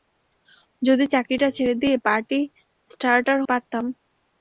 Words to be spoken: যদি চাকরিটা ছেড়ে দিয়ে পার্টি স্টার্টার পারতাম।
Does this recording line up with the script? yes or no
yes